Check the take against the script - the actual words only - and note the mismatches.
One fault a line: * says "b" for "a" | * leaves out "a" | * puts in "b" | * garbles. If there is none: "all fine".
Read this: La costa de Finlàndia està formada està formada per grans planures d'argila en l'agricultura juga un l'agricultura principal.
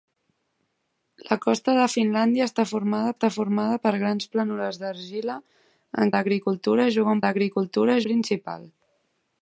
all fine